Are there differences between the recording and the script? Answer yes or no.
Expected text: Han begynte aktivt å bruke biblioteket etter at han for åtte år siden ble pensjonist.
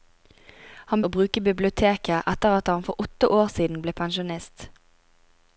yes